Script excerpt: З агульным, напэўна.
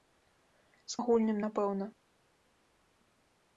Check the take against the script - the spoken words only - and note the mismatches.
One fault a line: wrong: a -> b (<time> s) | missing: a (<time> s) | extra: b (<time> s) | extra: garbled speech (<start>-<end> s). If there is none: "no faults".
no faults